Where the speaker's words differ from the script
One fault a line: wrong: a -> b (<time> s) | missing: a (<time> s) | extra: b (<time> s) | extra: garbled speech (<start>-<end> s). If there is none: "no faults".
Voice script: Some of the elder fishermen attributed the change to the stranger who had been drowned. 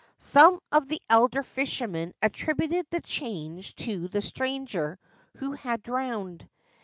missing: been (5.8 s)